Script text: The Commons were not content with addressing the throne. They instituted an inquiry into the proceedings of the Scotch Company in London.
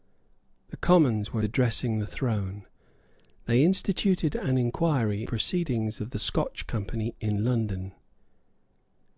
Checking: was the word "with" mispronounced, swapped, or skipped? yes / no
yes